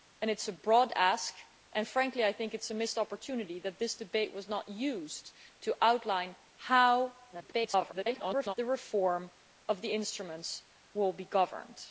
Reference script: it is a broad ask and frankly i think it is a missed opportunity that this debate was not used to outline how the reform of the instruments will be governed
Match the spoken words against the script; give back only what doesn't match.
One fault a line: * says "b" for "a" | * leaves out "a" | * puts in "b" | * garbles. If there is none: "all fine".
* garbles